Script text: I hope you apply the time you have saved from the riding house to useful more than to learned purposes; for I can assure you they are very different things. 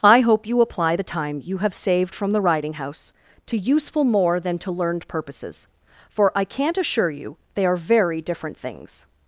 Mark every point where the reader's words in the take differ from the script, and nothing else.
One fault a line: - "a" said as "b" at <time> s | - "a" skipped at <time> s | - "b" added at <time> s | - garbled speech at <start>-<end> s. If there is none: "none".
- "can" said as "can't" at 6.4 s